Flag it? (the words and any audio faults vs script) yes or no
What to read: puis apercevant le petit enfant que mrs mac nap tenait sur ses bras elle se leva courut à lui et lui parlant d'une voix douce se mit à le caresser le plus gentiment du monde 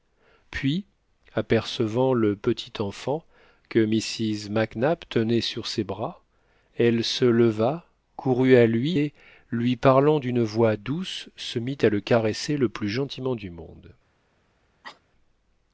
yes